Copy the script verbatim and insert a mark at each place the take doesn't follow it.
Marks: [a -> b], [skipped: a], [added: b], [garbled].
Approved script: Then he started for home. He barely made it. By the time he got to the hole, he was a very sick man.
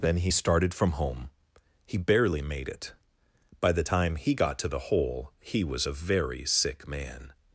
Then he started [for -> from] home. He barely made it. By the time he got to the hole, he was a very sick man.